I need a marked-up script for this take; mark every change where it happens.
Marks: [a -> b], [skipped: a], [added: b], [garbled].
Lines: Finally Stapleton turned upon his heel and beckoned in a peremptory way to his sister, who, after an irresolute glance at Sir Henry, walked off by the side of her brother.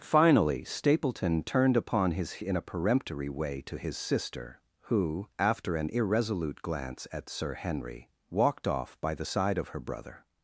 Finally Stapleton turned upon his [skipped: heel and beckoned] in a peremptory way to his sister, who, after an irresolute glance at Sir Henry, walked off by the side of her brother.